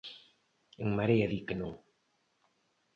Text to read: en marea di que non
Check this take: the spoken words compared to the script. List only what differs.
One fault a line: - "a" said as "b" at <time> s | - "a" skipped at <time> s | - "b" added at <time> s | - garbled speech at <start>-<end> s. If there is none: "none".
none